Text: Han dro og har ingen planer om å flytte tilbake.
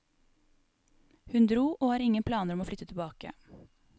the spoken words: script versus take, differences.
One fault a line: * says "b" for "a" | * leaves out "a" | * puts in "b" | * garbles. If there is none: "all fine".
* says "Hun" for "Han"